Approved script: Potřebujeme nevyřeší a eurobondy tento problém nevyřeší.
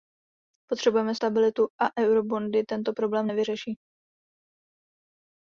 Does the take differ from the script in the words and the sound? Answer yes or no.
yes